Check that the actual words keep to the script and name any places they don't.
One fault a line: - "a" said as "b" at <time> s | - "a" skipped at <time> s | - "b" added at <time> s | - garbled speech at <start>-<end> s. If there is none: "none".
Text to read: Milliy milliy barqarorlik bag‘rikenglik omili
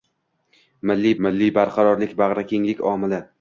none